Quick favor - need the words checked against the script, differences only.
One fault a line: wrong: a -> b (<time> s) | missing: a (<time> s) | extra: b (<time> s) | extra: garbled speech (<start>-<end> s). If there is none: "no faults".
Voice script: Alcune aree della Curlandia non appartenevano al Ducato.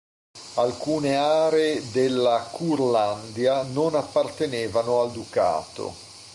no faults